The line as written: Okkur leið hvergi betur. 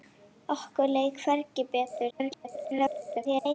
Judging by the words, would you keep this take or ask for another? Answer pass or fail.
fail